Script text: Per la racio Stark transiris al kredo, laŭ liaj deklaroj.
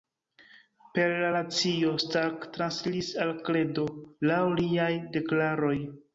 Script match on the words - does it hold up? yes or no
yes